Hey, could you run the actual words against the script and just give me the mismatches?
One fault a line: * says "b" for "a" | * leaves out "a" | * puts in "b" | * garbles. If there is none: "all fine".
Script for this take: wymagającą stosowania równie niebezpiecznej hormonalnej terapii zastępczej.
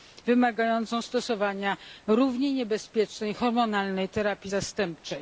all fine